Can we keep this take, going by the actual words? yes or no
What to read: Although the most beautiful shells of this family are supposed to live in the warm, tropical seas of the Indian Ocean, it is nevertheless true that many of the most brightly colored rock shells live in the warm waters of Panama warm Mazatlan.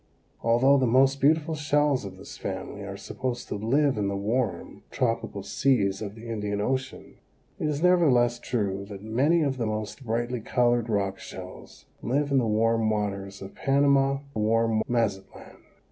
yes